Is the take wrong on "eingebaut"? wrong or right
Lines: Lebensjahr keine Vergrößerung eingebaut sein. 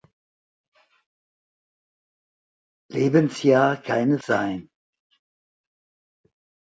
wrong